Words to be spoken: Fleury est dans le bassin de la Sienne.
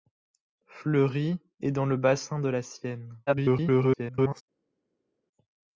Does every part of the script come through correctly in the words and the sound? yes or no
no